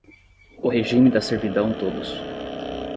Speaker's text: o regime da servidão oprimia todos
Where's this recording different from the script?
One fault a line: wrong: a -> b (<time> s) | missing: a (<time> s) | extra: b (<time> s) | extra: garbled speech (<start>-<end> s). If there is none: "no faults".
missing: oprimia (1.8 s)